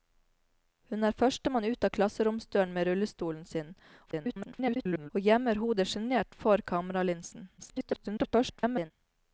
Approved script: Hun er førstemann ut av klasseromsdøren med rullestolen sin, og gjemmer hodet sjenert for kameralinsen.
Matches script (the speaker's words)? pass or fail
fail